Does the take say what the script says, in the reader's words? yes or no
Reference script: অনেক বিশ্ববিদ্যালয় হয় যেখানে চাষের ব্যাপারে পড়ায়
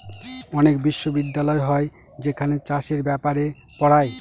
yes